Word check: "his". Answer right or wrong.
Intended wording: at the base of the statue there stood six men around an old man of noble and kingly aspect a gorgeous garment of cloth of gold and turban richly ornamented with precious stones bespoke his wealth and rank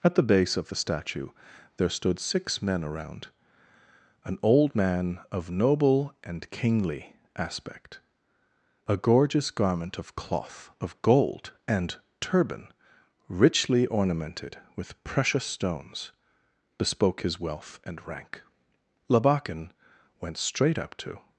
right